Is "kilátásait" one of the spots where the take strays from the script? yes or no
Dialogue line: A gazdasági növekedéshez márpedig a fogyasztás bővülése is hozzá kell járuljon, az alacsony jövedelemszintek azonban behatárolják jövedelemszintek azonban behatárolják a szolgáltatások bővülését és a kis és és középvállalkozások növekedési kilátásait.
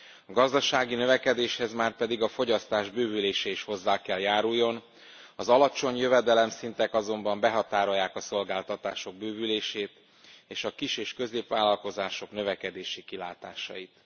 no